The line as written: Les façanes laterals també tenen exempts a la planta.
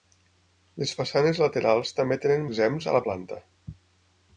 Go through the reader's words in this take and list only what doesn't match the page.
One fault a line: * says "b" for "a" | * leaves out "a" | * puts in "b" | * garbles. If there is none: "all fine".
all fine